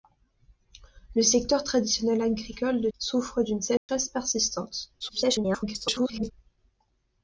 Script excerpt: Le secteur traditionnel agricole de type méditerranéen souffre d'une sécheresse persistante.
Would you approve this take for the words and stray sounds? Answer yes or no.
no